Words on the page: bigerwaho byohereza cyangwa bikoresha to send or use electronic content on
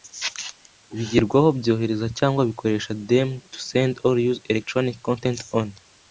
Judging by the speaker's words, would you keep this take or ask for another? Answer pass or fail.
fail